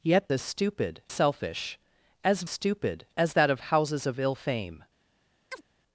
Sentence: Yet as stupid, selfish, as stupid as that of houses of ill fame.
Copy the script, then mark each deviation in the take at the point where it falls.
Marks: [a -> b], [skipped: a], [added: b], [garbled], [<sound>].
Yet as stupid, selfish, as stupid as that of houses of ill fame. [chirp]